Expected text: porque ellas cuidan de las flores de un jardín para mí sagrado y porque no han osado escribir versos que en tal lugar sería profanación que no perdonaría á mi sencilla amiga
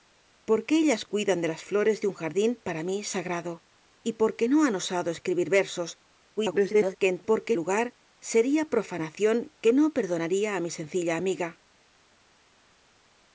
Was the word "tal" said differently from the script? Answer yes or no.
yes